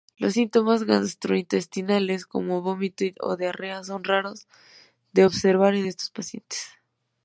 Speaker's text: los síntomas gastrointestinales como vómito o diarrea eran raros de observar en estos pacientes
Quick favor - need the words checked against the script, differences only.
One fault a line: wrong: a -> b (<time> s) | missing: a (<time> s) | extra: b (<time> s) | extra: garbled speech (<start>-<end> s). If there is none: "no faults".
wrong: eran -> son (3.8 s)